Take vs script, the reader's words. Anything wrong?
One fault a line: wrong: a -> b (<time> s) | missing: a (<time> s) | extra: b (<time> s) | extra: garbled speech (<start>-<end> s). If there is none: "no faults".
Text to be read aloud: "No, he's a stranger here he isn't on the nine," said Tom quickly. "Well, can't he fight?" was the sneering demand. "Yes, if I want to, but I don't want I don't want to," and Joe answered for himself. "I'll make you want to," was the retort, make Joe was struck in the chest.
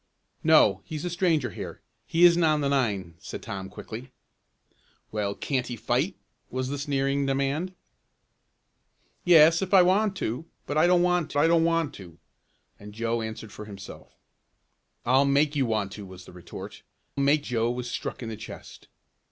no faults